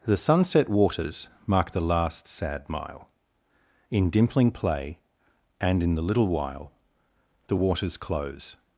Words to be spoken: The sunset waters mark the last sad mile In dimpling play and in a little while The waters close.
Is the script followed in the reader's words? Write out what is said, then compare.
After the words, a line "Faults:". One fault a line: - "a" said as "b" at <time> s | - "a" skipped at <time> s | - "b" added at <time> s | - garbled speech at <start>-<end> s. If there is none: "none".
The sunset waters mark the last sad mile In dimpling play and in the little while The waters close.
Faults:
- "a" said as "the" at 5.9 s